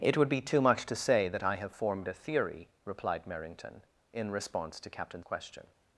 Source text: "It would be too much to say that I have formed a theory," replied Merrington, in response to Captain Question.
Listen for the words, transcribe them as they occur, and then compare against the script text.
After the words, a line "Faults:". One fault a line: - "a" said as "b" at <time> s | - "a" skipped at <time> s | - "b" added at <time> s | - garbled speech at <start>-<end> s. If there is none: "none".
"It would be too much to say that I have formed a theory," replied Merrington, in response to Captain Question.
Faults:
none